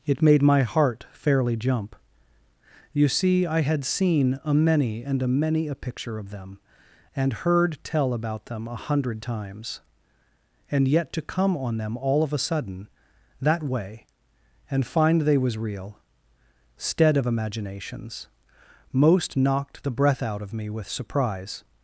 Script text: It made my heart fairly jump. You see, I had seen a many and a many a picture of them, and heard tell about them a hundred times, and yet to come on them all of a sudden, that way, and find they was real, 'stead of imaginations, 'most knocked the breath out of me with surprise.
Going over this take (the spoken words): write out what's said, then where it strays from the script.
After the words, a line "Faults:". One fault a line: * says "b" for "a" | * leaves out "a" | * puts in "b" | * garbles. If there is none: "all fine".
It made my heart fairly jump. You see, I had seen a many and a many a picture of them, and heard tell about them a hundred times, and yet to come on them all of a sudden, that way, and find they was real, 'stead of imaginations, 'most knocked the breath out of me with surprise.
Faults:
all fine